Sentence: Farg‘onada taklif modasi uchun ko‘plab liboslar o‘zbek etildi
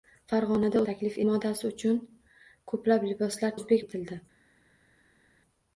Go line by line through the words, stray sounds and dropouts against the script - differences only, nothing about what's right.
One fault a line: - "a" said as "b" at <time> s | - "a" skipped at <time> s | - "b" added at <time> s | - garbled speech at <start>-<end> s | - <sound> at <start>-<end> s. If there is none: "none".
none